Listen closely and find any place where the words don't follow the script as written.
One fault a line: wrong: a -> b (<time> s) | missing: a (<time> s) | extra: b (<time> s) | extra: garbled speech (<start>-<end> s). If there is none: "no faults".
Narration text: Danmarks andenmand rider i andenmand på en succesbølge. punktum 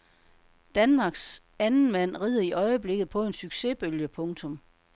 wrong: andenmand -> øjeblikket (2.5 s)